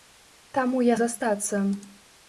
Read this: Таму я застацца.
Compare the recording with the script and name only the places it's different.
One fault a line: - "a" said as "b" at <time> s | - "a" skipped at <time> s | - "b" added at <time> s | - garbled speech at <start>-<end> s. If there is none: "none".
none